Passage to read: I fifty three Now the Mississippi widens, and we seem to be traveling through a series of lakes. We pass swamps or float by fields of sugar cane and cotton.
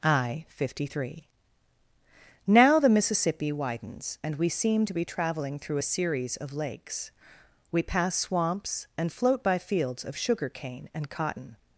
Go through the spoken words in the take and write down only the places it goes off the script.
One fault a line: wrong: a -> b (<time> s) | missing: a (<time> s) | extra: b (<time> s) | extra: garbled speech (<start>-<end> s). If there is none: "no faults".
wrong: or -> and (9.0 s)